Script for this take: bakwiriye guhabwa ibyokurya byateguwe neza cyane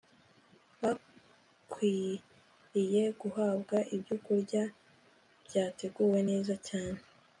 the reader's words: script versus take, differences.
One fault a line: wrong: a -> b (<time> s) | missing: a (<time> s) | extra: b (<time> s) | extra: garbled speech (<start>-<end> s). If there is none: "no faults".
no faults